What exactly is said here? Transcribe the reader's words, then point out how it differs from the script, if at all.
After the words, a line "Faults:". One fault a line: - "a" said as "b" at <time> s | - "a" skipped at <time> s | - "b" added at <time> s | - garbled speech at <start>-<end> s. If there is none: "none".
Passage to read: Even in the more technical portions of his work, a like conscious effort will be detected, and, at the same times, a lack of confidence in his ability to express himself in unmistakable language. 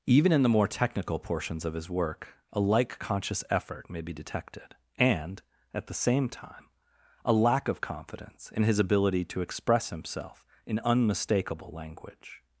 Even in the more technical portions of his work, a like conscious effort may be detected, and, at the same time, a lack of confidence in his ability to express himself in unmistakable language.
Faults:
- "will" said as "may" at 3.9 s
- "times" said as "time" at 6.3 s